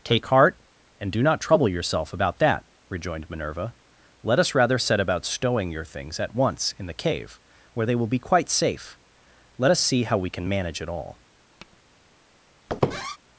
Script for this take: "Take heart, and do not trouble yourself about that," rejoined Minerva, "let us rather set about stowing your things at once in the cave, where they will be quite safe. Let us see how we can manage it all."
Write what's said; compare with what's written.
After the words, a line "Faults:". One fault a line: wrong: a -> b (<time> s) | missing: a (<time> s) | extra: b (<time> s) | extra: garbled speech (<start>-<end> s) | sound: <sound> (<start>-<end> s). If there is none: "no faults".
"Take heart, and do not trouble yourself about that," rejoined Minerva, "let us rather set about stowing your things at once in the cave, where they will be quite safe. Let us see how we can manage it all."
Faults:
sound: tap (11.6-11.8 s)
sound: squeak (12.7-13.2 s)